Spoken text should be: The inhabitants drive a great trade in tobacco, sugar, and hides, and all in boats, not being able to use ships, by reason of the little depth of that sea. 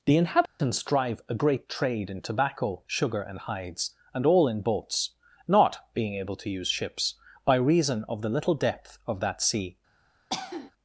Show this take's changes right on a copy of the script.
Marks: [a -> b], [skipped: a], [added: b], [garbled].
The inhabitants drive a great trade in tobacco, sugar, and hides, and all in boats, not being able to use ships, by reason of the little depth of that sea.